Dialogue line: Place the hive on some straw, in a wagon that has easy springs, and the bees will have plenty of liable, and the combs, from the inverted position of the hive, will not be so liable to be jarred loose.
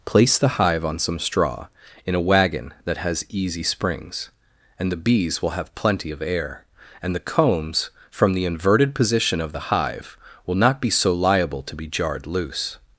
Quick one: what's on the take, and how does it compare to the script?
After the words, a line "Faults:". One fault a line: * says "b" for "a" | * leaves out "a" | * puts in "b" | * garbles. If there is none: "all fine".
Place the hive on some straw, in a wagon that has easy springs, and the bees will have plenty of air, and the combs, from the inverted position of the hive, will not be so liable to be jarred loose.
Faults:
* says "air" for "liable"